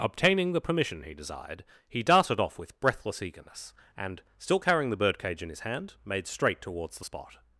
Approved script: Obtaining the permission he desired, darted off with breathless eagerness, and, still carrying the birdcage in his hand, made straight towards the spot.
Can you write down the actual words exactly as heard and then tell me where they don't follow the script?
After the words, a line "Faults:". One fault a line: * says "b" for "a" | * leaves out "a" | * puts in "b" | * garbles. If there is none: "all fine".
Obtaining the permission he desired, he darted off with breathless eagerness, and, still carrying the birdcage in his hand, made straight towards the spot.
Faults:
* puts in "he"